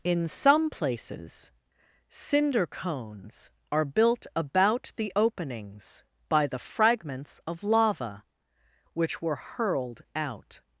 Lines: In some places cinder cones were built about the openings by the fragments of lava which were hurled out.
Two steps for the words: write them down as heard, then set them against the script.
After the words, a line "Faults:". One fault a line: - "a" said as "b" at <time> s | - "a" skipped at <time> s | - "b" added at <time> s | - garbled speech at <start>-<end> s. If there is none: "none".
In some places cinder cones are built about the openings by the fragments of lava which were hurled out.
Faults:
- "were" said as "are" at 3.7 s